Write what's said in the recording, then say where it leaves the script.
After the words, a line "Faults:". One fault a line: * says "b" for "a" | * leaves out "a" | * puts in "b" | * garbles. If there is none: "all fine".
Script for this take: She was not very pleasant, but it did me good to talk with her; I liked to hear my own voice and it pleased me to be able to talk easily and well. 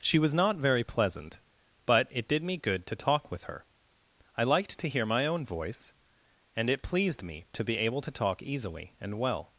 She was not very pleasant, but it did me good to talk with her; I liked to hear my own voice and it pleased me to be able to talk easily and well.
Faults:
all fine